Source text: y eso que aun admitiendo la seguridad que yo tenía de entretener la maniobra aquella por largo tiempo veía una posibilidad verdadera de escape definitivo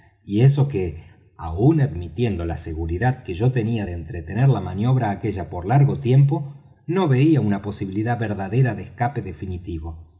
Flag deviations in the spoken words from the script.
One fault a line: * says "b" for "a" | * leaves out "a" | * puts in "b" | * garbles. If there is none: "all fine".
* puts in "no"